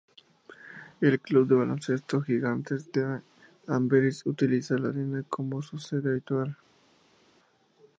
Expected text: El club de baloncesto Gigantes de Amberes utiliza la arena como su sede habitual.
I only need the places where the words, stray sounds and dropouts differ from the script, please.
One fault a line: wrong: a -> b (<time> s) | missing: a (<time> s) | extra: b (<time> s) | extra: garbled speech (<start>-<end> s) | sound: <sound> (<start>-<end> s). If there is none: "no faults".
no faults